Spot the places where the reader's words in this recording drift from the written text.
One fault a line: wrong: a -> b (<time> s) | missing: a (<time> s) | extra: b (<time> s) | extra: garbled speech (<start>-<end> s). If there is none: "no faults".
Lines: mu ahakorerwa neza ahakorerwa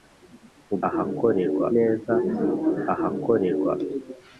no faults